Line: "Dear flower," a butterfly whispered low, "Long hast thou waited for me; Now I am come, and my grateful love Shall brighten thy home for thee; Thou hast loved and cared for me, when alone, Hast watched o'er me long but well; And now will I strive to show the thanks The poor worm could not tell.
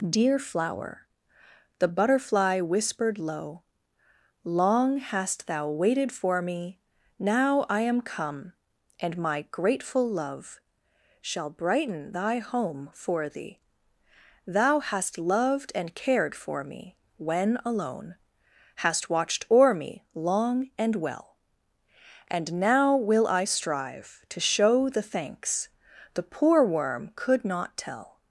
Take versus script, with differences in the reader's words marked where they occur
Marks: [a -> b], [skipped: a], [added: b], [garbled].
"Dear flower," [a -> the] butterfly whispered low, "Long hast thou waited for me; Now I am come, and my grateful love Shall brighten thy home for thee; Thou hast loved and cared for me, when alone, Hast watched o'er me long [but -> and] well; And now will I strive to show the thanks The poor worm could not tell.